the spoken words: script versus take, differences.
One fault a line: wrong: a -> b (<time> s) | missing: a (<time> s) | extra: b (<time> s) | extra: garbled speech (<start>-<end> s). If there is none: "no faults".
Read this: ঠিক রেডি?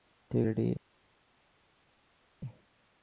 no faults